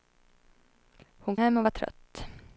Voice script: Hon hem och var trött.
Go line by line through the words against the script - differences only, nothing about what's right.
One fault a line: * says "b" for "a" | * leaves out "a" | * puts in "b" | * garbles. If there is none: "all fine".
all fine